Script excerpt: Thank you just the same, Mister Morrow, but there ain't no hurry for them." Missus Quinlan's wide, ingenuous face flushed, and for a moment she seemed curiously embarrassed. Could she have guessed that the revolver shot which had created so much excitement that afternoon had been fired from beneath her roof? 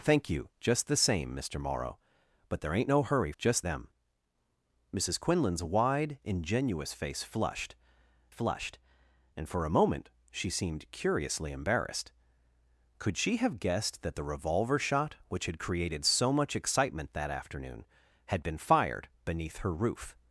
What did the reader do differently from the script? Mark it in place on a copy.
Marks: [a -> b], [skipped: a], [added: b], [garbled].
Thank you just the same, Mister Morrow, but there ain't no hurry [for -> just] them." Missus Quinlan's wide, ingenuous face flushed, [added: flushed] and for a moment she seemed curiously embarrassed. Could she have guessed that the revolver shot which had created so much excitement that afternoon had been fired [skipped: from] beneath her roof?